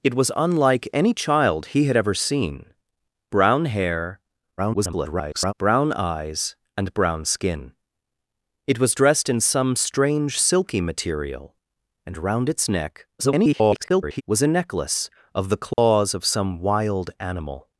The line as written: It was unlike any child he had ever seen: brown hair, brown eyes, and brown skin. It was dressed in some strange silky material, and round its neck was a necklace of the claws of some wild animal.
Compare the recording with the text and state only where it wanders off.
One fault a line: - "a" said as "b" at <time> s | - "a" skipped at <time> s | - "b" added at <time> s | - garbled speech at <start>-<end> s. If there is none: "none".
- garbled speech at 4.6-5.5 s
- garbled speech at 13.2-14.2 s